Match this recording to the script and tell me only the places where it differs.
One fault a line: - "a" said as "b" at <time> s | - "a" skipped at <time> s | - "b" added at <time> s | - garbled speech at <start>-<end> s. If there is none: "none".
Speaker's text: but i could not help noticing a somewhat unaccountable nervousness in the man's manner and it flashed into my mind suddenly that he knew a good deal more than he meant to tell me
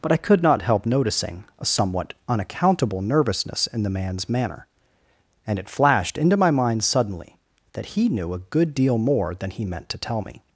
none